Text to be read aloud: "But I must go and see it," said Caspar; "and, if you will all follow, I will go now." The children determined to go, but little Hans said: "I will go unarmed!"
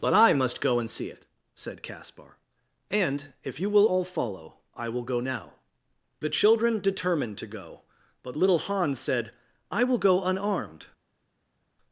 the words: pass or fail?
pass